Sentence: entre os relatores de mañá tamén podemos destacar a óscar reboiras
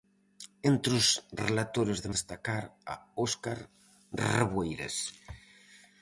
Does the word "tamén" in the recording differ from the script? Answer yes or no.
yes